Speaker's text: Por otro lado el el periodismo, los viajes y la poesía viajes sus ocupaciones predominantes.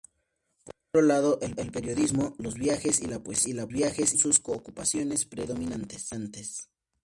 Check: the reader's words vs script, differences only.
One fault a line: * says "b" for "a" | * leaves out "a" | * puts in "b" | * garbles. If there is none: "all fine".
all fine